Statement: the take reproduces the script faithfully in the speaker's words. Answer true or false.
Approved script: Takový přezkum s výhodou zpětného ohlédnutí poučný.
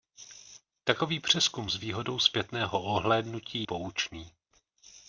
true